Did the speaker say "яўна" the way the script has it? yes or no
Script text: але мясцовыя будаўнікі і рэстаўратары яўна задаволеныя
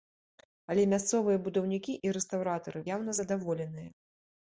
yes